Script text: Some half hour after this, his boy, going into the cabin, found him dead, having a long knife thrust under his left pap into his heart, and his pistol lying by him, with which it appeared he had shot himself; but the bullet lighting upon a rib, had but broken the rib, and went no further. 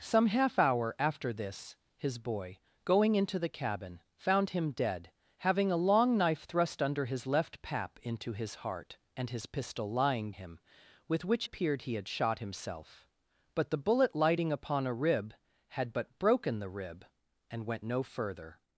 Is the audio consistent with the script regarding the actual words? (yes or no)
no